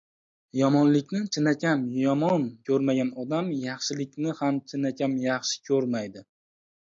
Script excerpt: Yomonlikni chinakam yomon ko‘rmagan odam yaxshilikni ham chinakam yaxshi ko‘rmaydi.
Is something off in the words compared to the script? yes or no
no